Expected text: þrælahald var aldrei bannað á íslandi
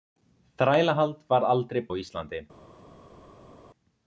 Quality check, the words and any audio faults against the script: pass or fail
fail